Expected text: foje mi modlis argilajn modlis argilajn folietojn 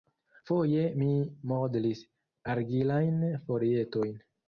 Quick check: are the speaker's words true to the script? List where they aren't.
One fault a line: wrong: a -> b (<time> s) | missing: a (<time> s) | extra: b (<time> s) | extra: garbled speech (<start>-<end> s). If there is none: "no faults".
missing: modlis argilajn (3.2 s)